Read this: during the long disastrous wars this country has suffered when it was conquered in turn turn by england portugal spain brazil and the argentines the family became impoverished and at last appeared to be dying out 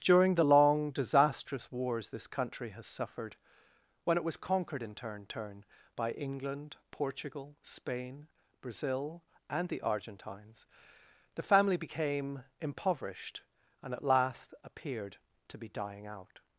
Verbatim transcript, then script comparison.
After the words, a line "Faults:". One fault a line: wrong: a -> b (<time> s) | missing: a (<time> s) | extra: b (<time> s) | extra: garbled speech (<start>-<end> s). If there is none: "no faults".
during the long disastrous wars this country has suffered when it was conquered in turn turn by england portugal spain brazil and the argentines the family became impoverished and at last appeared to be dying out
Faults:
no faults